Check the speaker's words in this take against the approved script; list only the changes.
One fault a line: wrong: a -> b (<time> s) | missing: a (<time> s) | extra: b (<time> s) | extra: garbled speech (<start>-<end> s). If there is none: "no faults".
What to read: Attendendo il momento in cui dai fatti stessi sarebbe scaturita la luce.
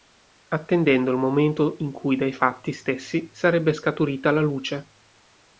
no faults